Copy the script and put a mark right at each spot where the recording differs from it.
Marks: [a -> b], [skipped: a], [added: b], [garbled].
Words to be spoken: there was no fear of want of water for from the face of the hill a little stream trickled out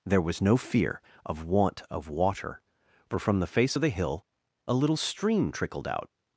there was no fear of want of water for from the face of the hill a little stream trickled out